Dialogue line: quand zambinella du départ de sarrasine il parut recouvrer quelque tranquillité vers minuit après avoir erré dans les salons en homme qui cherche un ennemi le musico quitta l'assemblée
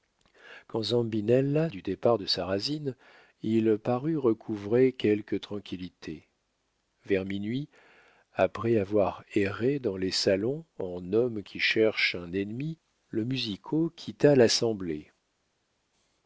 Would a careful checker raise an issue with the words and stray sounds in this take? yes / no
no